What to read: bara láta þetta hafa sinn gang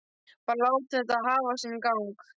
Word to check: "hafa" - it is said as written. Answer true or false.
true